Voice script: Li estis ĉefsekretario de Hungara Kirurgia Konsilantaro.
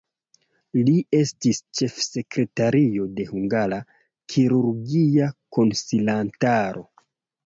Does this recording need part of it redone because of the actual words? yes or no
no